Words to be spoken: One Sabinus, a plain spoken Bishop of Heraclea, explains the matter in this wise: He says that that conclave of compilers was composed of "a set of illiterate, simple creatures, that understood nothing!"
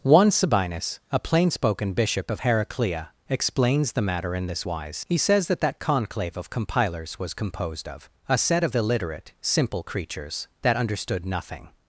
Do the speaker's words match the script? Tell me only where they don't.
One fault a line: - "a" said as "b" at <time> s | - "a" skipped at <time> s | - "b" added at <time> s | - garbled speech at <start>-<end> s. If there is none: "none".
none